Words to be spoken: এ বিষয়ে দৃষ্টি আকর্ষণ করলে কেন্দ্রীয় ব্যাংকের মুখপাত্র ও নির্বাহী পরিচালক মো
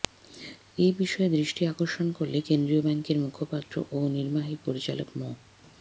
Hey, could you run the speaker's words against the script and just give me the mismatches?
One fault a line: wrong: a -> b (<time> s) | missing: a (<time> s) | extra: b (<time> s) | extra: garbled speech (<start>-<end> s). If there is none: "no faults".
no faults